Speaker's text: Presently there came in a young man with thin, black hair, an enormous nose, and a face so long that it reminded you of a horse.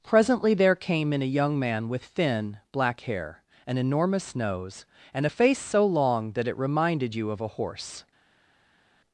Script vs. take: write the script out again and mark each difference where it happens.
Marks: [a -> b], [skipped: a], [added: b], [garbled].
Presently there came in a young man with thin, black hair, an enormous nose, and a face so long that it reminded you of a horse.